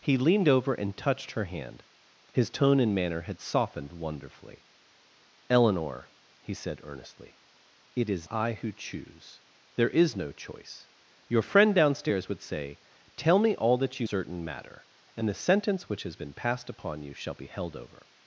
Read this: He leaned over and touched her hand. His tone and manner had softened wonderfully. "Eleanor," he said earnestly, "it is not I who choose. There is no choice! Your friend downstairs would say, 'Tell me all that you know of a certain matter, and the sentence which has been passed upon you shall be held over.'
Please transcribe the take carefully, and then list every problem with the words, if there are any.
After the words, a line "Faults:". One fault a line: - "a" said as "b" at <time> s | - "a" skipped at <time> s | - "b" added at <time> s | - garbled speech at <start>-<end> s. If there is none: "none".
He leaned over and touched her hand. His tone and manner had softened wonderfully. "Eleanor," he said earnestly, "it is I who choose. There is no choice! Your friend downstairs would say, 'Tell me all that you certain matter, and the sentence which has been passed upon you shall be held over.'
Faults:
- "not" skipped at 8.3 s
- "know of a" skipped at 14.1 s